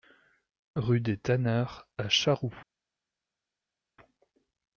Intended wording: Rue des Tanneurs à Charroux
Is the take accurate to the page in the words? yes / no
yes